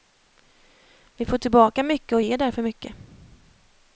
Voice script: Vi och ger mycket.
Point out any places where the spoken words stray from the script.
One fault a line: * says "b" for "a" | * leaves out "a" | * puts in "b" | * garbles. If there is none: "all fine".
* puts in "får tillbaka mycket"
* puts in "därför"